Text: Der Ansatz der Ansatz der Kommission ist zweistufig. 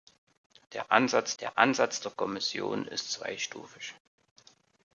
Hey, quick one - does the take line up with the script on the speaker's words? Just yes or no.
yes